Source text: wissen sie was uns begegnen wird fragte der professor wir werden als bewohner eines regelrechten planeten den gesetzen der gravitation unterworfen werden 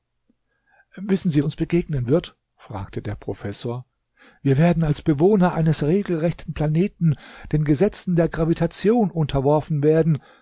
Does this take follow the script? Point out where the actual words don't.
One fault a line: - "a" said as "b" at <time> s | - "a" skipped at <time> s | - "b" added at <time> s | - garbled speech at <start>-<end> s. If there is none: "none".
- "was" skipped at 1.4 s